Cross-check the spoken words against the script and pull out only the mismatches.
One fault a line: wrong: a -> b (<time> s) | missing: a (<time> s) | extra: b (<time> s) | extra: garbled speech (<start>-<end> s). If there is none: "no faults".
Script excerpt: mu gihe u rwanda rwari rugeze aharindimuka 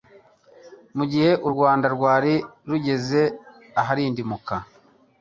no faults